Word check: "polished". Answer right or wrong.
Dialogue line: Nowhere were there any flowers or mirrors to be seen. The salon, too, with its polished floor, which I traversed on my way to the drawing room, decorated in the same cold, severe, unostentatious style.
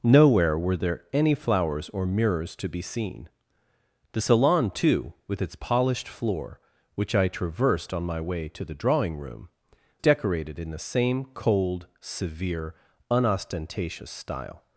right